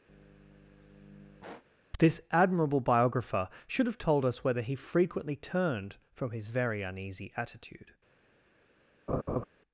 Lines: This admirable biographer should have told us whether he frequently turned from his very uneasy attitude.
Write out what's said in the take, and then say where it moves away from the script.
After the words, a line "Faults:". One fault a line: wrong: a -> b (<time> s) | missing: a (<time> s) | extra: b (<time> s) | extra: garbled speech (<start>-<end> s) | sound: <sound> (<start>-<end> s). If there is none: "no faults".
This admirable biographer should have told us whether he frequently turned from his very uneasy attitude.
Faults:
sound: sigh (0.1-1.6 s)
sound: laugh (9.1-9.5 s)